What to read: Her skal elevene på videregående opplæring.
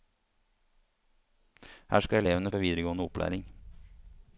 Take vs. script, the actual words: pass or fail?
pass